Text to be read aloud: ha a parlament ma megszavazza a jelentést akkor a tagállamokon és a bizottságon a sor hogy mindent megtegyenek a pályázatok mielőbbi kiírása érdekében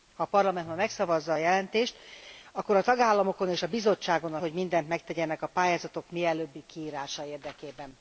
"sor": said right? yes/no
no